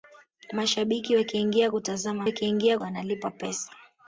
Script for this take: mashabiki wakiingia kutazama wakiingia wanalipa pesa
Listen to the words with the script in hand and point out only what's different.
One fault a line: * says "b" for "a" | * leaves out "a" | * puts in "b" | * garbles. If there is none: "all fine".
all fine